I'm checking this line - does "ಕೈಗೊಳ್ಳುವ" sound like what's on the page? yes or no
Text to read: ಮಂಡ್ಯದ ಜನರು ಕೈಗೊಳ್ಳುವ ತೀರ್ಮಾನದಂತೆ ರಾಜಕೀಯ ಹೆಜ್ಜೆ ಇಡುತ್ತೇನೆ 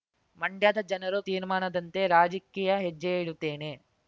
no